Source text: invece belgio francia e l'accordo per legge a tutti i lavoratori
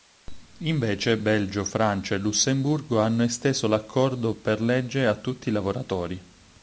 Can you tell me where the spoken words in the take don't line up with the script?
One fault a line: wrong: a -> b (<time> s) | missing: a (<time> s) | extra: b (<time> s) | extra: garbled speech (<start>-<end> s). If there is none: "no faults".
extra: lussemburgo hanno esteso (2.2 s)